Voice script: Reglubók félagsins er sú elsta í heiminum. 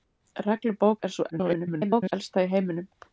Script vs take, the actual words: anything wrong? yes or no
yes